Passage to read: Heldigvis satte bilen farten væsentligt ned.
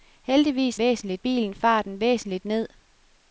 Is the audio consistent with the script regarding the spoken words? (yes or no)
no